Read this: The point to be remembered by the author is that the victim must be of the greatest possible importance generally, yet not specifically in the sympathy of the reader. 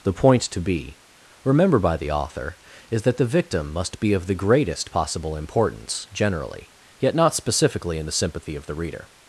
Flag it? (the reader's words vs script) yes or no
yes